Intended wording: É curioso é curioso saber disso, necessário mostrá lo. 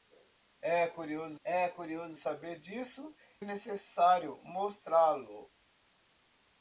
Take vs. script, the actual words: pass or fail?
pass